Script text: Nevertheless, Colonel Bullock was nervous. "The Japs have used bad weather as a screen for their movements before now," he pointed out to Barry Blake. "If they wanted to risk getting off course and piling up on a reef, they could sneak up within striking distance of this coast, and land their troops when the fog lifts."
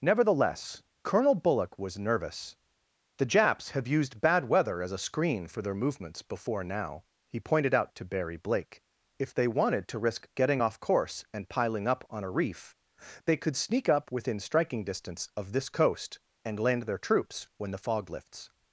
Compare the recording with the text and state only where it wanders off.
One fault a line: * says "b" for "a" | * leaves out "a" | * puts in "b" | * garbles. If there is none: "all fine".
all fine